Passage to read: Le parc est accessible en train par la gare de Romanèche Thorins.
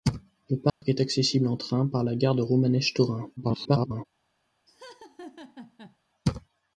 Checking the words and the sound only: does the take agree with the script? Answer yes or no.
no